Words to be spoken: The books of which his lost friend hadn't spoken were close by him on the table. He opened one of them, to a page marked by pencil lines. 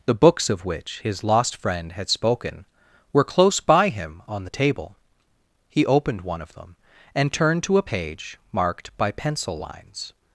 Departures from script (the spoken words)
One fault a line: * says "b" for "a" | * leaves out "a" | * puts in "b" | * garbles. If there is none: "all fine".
* says "had" for "hadn't"
* puts in "and turned"